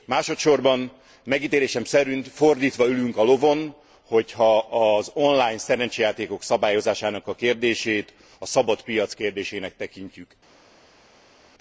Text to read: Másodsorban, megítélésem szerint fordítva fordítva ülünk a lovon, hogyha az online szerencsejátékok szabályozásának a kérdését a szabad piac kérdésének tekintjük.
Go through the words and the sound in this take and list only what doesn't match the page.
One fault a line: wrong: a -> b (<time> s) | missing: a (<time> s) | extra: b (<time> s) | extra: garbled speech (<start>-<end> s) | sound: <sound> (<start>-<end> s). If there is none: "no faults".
missing: fordítva (2.9 s)